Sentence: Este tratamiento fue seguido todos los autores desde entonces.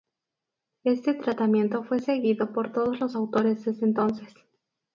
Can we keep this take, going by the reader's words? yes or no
no